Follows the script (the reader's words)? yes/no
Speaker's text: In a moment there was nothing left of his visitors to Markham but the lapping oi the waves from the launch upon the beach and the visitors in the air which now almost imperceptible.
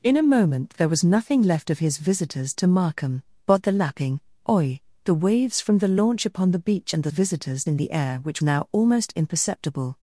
yes